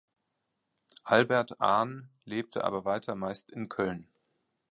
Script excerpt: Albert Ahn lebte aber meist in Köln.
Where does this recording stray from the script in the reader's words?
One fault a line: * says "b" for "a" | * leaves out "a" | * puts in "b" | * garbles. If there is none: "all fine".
* puts in "weiter"